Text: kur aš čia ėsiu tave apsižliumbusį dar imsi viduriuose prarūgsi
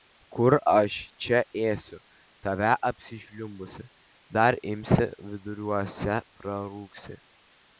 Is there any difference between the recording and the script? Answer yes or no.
no